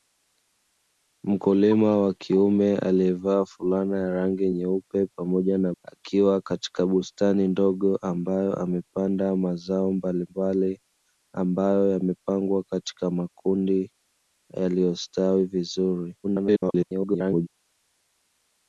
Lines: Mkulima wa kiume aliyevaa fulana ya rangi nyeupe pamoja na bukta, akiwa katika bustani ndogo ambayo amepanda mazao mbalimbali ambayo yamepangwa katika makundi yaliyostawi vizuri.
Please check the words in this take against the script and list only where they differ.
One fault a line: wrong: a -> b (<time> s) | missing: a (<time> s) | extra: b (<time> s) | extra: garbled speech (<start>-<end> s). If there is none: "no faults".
missing: bukta (5.7 s)
extra: garbled speech (16.2-17.5 s)